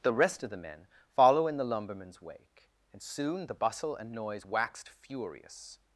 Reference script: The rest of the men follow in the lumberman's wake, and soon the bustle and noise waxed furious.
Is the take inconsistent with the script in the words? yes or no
no